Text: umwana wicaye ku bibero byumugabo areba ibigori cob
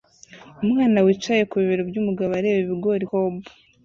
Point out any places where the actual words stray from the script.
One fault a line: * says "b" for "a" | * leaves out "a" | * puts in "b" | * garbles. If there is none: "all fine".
all fine